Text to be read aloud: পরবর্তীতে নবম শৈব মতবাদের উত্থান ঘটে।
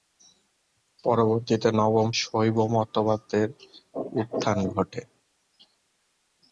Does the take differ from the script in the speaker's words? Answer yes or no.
no